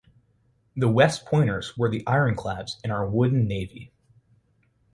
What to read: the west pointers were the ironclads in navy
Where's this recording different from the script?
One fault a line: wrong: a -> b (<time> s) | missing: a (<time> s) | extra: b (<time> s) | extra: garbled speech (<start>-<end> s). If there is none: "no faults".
extra: our wooden (2.9 s)